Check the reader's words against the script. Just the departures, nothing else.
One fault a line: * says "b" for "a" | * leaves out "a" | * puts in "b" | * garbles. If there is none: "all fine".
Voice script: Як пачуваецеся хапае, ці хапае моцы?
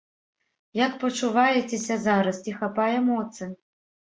* says "зараз" for "хапае"